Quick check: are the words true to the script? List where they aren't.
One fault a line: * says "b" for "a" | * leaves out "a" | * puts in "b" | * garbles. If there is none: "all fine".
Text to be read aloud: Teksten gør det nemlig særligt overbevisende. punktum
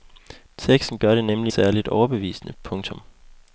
all fine